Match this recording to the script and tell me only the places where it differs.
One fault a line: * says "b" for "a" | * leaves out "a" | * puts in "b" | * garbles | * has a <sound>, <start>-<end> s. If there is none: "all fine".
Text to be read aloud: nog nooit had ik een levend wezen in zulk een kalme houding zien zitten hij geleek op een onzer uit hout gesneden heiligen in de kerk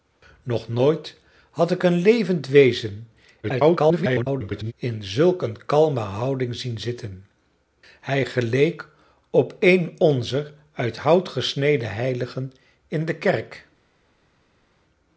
* garbles